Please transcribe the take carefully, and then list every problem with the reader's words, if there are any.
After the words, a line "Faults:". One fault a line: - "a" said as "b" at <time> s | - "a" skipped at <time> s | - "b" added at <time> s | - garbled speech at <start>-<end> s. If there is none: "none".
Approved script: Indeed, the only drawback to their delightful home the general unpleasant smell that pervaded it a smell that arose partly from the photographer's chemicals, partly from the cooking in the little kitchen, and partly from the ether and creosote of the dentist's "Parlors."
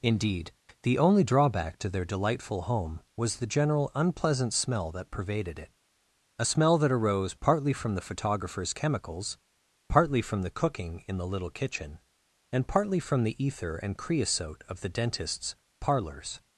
Indeed, the only drawback to their delightful home was the general unpleasant smell that pervaded it a smell that arose partly from the photographer's chemicals, partly from the cooking in the little kitchen, and partly from the ether and creosote of the dentist's "Parlors."
Faults:
- "was" added at 3.1 s